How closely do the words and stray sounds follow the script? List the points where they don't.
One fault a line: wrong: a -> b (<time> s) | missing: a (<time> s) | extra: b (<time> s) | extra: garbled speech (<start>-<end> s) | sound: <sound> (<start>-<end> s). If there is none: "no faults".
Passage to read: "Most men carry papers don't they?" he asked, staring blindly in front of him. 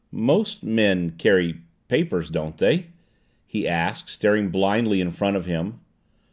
no faults